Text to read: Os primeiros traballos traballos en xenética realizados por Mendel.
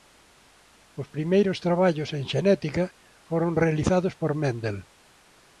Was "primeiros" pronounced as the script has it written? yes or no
yes